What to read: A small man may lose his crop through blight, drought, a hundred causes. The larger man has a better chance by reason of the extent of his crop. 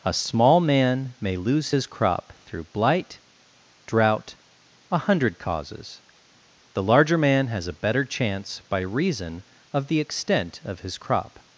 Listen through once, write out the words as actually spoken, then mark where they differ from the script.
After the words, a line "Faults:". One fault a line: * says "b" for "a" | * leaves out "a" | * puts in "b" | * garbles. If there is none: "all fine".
A small man may lose his crop through blight, drought, a hundred causes. The larger man has a better chance by reason of the extent of his crop.
Faults:
all fine